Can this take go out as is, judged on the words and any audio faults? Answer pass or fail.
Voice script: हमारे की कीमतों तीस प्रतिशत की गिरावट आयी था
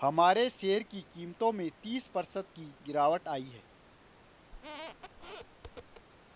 fail